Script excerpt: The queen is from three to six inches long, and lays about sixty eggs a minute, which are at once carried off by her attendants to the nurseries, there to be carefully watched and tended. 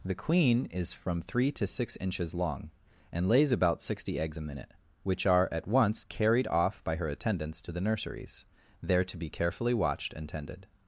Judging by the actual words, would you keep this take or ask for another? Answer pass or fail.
pass